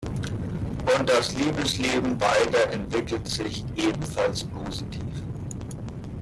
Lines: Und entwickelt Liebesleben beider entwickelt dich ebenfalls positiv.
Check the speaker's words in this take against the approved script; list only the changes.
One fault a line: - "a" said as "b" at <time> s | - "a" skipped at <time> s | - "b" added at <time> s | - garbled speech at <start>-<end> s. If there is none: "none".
- "entwickelt" said as "das" at 1.1 s
- "dich" said as "sich" at 3.3 s